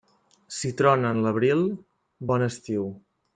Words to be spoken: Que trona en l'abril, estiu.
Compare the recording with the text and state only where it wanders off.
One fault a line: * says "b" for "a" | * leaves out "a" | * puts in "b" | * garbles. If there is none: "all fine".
* says "Si" for "Que"
* puts in "bon"